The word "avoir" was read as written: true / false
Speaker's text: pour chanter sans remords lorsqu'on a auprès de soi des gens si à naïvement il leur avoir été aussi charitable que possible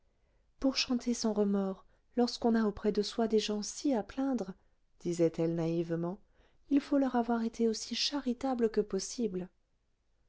true